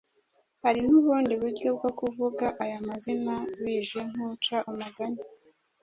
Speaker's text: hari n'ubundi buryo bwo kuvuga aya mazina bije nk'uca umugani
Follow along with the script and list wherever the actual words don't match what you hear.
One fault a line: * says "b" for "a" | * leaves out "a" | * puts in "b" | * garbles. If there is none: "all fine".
all fine